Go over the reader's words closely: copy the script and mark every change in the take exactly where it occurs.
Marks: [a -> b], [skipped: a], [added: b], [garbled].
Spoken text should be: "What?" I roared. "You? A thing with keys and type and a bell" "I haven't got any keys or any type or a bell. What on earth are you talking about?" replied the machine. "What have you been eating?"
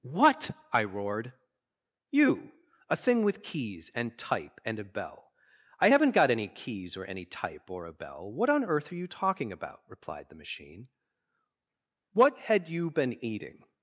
"What?" I roared. "You? A thing with keys and type and a bell" "I haven't got any keys or any type or a bell. What on earth are you talking about?" replied the machine. "What [have -> had] you been eating?"